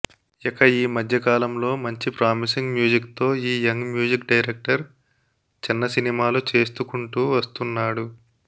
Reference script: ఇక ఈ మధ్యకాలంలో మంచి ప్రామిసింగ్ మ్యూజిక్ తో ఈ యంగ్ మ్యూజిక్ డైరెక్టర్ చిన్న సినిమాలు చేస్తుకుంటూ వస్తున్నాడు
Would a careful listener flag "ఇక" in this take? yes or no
no